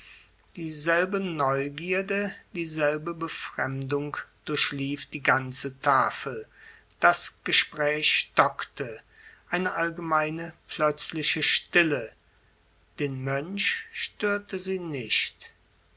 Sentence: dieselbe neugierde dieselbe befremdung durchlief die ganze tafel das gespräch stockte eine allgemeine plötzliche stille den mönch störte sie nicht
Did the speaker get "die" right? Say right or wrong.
right